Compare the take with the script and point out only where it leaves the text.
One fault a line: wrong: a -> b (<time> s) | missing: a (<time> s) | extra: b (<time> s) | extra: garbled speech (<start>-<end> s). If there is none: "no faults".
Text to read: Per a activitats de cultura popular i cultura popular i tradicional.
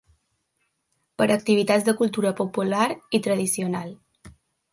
missing: cultura popular i (3.2 s)